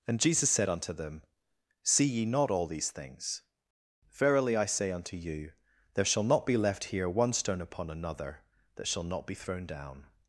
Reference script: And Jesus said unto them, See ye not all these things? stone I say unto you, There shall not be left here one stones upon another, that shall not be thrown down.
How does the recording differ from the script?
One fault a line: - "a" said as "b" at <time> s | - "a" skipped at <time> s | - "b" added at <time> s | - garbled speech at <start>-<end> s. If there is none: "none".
- "stone" said as "verily" at 4.2 s
- "stones" said as "stone" at 7.3 s